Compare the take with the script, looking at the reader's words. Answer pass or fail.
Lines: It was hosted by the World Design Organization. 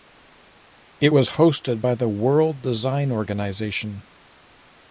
pass